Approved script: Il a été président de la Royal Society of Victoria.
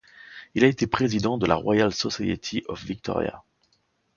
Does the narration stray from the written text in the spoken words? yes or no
no